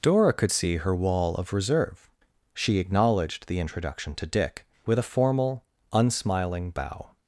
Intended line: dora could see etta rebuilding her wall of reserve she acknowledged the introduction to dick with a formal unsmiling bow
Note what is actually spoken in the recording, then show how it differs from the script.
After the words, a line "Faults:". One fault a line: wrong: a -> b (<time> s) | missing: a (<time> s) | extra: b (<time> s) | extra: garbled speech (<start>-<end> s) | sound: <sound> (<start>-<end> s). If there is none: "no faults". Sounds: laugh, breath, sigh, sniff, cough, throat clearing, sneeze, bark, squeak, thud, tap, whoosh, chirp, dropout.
dora could see her wall of reserve she acknowledged the introduction to dick with a formal unsmiling bow
Faults:
missing: etta rebuilding (0.8 s)